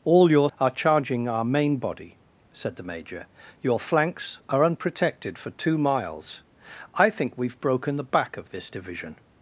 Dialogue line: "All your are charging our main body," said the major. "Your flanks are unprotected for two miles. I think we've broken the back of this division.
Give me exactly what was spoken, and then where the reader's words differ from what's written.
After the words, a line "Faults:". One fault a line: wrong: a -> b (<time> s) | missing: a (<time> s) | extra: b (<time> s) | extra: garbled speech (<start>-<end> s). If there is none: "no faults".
"All your are charging our main body," said the major. "Your flanks are unprotected for two miles. I think we've broken the back of this division.
Faults:
no faults